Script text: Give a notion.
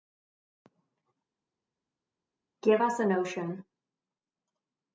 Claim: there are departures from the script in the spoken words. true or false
true